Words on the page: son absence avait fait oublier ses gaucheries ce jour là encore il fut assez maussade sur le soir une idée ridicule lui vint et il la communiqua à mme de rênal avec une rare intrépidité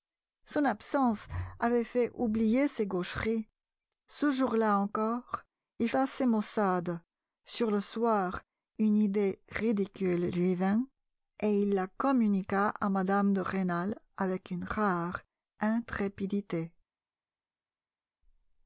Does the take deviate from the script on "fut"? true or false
true